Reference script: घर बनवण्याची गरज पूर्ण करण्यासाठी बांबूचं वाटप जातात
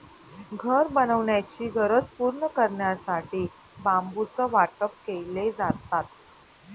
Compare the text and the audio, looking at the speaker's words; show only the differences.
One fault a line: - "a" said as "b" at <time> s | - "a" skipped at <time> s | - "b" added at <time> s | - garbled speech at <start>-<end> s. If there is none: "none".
- "केले" added at 5.1 s